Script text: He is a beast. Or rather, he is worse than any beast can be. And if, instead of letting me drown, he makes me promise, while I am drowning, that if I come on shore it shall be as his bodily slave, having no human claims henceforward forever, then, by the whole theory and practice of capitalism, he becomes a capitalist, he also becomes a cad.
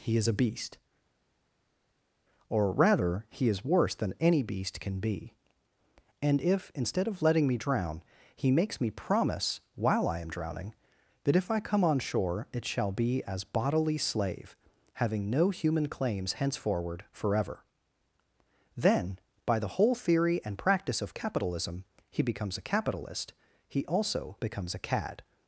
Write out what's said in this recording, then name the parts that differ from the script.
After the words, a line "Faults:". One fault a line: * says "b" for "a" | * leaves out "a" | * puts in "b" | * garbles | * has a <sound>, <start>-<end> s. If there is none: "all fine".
He is a beast. Or rather, he is worse than any beast can be. And if, instead of letting me drown, he makes me promise, while I am drowning, that if I come on shore it shall be as bodily slave, having no human claims henceforward forever, then, by the whole theory and practice of capitalism, he becomes a capitalist, he also becomes a cad.
Faults:
* leaves out "his"